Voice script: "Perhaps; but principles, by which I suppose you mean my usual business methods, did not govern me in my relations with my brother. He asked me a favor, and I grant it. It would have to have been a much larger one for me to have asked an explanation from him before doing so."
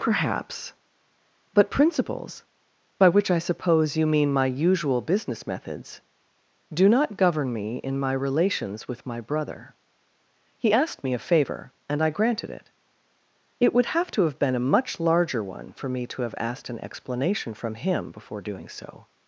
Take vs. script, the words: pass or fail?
fail